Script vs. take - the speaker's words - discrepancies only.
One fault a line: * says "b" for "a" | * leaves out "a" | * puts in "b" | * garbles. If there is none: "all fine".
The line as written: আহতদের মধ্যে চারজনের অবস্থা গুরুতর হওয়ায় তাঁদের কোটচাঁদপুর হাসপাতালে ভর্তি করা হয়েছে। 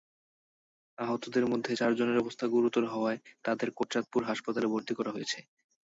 all fine